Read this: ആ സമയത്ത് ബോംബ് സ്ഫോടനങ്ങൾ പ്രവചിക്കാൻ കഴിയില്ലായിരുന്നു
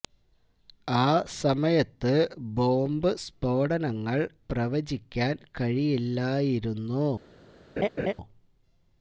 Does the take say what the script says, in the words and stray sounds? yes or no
no